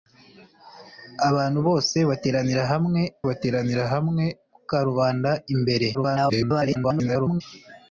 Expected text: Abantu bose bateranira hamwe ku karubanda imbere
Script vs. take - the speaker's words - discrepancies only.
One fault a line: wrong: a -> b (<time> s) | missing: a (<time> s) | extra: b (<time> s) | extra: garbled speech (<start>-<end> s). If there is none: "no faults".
extra: bateranira hamwe (3.3 s)
extra: garbled speech (5.9-7.4 s)